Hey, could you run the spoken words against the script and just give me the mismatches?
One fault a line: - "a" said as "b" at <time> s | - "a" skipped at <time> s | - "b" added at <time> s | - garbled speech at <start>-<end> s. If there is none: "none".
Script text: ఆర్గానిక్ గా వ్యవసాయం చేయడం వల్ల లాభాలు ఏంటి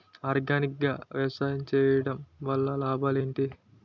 none